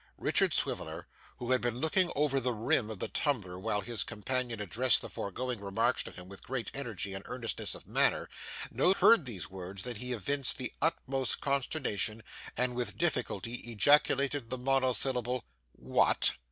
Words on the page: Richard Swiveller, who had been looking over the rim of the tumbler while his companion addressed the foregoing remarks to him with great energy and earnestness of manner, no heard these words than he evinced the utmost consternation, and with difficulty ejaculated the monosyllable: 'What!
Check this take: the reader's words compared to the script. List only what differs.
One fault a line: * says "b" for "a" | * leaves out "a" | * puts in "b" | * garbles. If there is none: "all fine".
all fine